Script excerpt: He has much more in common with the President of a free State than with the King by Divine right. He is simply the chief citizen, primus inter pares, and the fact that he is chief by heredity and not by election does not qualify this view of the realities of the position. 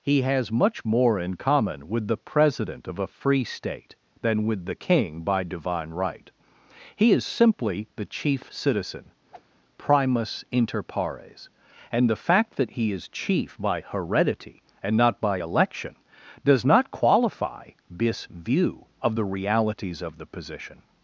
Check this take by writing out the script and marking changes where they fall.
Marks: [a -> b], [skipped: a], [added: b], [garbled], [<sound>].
He has much more in common with the President of a free State than with the King by Divine right. He is simply the chief citizen, [whoosh] primus inter pares, and the fact that he is chief by heredity and not by election does not qualify this view of the realities of the position.